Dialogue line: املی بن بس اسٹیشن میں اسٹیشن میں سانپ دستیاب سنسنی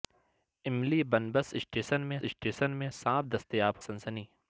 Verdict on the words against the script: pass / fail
pass